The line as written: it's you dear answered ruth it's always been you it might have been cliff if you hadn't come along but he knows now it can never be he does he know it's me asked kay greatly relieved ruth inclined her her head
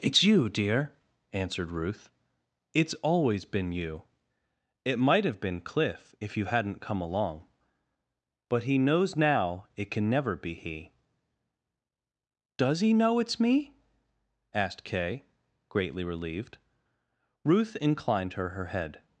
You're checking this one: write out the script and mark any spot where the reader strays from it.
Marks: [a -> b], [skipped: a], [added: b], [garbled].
it's you dear answered ruth it's always been you it might have been cliff if you hadn't come along but he knows now it can never be he does he know it's me asked kay greatly relieved ruth inclined her her head